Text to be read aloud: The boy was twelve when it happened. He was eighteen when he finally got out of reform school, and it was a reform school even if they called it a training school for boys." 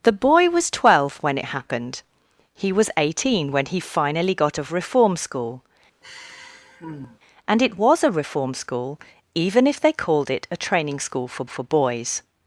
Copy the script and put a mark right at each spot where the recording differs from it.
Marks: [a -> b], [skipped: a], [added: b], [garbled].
The boy was twelve when it happened. He was eighteen when he finally got [skipped: out] of reform school, and it was a reform school even if they called it a training school for [added: for] boys."